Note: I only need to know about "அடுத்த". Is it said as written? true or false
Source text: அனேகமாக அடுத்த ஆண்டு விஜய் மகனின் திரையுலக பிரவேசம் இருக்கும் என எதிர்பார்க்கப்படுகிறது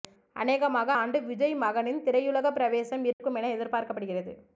false